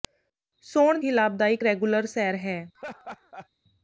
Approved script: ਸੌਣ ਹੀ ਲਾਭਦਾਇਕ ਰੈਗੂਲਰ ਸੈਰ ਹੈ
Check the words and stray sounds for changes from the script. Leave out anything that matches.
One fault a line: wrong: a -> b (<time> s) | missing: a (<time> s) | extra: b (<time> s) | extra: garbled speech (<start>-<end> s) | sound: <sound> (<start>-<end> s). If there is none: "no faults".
sound: laugh (2.7-3.5 s)